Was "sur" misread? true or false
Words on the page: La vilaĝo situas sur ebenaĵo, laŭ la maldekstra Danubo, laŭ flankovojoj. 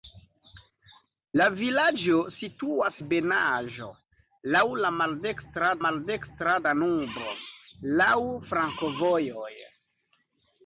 true